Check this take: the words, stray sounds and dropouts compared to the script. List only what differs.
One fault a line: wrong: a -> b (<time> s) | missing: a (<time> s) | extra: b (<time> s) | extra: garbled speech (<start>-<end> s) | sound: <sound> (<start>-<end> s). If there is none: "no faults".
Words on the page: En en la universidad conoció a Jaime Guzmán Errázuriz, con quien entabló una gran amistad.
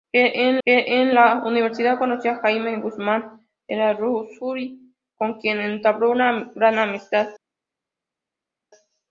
no faults